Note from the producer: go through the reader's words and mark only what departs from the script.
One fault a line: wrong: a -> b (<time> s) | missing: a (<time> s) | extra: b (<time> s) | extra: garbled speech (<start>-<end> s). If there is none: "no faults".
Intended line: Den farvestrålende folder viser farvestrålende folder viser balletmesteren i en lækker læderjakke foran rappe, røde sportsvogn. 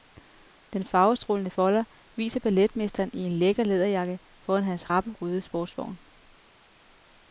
missing: farvestrålende folder viser (2.4 s)
extra: hans (4.6 s)